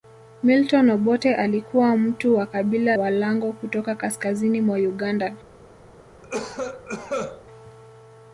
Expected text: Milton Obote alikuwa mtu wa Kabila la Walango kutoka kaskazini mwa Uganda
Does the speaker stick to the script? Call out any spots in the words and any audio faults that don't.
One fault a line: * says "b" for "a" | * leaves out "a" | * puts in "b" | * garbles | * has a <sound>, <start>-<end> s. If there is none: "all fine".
* leaves out "la"
* has a cough, 6.2-7.4 s